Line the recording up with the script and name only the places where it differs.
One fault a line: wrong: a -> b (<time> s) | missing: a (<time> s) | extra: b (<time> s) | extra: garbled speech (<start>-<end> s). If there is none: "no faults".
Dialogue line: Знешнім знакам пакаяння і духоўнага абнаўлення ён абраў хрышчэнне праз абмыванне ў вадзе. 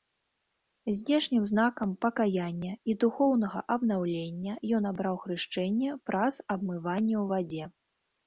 no faults